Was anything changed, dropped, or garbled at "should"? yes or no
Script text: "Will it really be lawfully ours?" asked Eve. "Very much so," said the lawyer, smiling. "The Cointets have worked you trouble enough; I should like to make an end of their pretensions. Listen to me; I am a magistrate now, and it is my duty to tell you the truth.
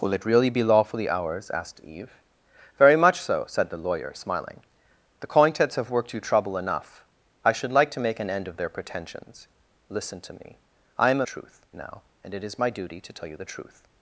no